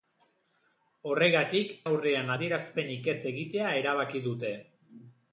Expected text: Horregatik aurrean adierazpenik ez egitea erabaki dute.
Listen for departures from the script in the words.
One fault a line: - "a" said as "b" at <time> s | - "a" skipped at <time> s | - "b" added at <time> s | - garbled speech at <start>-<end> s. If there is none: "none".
none